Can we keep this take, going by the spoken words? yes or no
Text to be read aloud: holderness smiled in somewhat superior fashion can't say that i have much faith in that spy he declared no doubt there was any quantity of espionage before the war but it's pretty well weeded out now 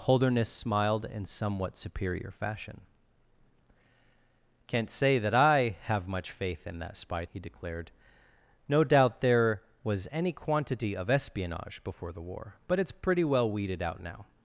yes